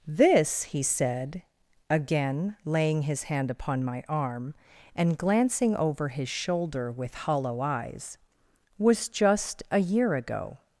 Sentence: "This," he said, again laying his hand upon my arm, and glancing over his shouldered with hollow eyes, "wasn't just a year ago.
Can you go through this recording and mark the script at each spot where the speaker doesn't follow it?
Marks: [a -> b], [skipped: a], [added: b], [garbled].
"This," he said, again laying his hand upon my arm, and glancing over his [shouldered -> shoulder] with hollow eyes, ["wasn't -> was] just a year ago.